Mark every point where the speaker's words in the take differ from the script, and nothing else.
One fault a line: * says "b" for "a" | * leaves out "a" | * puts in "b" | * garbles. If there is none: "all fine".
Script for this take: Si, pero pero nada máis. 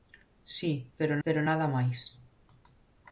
all fine